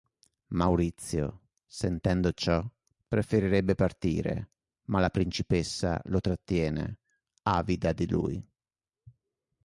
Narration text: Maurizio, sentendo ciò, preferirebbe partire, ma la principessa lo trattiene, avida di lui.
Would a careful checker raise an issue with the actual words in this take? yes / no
no